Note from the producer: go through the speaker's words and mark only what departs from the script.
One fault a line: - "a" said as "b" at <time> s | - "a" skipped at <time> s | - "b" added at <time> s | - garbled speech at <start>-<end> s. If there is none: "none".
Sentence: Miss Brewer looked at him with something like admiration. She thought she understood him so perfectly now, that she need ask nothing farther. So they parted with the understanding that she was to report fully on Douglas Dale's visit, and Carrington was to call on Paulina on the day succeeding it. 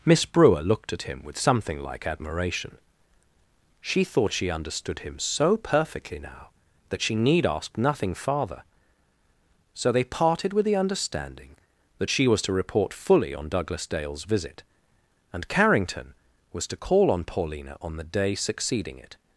none